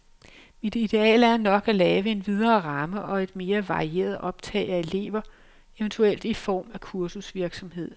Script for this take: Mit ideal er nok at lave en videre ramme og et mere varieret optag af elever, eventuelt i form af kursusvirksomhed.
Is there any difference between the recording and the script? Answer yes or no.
no